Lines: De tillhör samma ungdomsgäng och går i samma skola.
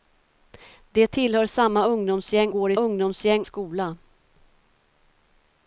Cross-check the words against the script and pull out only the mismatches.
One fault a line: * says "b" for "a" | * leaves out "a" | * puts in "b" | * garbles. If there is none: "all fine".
* leaves out "och"
* says "ungdomsgäng" for "samma"